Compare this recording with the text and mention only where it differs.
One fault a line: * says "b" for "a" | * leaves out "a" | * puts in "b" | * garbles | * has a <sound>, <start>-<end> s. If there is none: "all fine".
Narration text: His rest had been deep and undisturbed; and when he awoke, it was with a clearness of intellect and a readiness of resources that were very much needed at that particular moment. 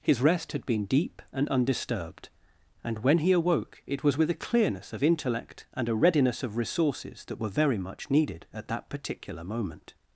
all fine